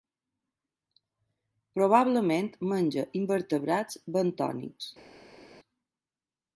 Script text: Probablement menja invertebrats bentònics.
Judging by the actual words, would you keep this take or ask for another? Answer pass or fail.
pass